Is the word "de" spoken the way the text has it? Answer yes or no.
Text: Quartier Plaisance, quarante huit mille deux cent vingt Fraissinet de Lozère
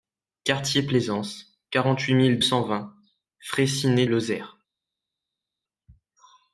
no